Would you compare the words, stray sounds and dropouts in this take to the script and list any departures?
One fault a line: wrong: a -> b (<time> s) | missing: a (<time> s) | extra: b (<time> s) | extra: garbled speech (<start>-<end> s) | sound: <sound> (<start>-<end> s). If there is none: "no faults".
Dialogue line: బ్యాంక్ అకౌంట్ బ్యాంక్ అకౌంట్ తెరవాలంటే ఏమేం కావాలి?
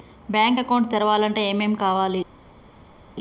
missing: బ్యాంక్ అకౌంట్ (0.9 s)